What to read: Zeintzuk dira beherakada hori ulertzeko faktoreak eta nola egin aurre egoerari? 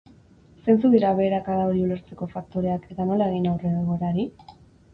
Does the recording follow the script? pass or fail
pass